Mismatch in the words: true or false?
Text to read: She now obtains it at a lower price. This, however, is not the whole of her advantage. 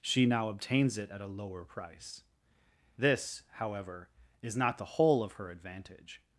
false